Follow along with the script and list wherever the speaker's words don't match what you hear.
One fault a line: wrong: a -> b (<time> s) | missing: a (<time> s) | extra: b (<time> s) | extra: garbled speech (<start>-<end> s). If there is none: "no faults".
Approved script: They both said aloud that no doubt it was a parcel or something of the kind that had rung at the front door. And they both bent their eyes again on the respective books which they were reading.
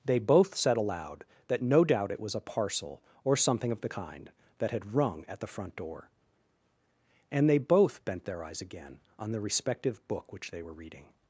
wrong: books -> book (10.1 s)